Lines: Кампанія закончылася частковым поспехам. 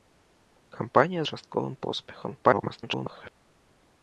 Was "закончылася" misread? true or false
true